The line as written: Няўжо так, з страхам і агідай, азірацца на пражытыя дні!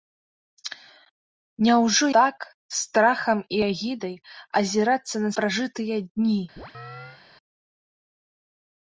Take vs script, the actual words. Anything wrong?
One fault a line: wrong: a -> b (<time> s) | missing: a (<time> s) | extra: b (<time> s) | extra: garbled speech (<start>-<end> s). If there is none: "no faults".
no faults